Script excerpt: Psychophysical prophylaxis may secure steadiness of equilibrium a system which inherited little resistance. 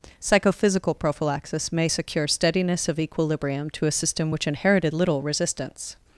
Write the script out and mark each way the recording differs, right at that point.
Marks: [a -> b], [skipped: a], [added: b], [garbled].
Psychophysical prophylaxis may secure steadiness of equilibrium [added: to] a system which inherited little resistance.